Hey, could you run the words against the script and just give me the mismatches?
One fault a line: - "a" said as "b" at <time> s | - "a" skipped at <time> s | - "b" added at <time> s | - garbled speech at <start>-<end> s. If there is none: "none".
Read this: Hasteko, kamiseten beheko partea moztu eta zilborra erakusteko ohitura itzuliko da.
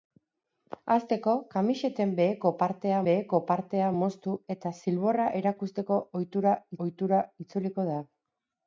- "beheko partea" added at 3.1 s
- "ohitura" added at 6.9 s